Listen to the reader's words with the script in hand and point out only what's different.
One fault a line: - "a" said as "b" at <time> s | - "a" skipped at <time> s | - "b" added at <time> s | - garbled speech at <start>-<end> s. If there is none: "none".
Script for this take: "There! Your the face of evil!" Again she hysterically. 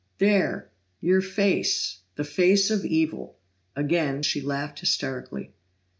- "face" added at 1.2 s
- "laughed" added at 4.4 s